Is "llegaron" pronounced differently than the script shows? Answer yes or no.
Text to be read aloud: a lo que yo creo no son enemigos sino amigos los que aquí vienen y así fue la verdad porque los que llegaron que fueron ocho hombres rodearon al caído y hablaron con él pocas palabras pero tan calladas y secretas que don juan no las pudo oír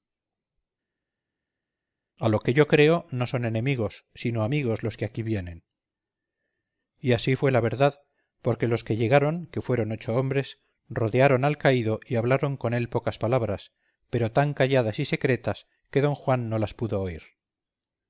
no